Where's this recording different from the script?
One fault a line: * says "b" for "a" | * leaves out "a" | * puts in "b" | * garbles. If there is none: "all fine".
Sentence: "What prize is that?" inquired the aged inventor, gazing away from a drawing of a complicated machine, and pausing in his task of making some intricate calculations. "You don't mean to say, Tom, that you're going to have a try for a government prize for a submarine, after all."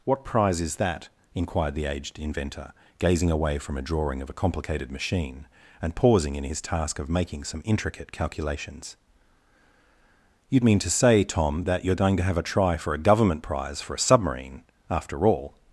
* leaves out "don't"